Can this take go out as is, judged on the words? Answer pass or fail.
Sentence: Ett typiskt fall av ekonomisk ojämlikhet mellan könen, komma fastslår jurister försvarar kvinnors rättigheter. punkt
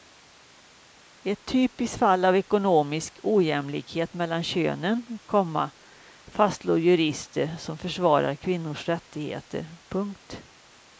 fail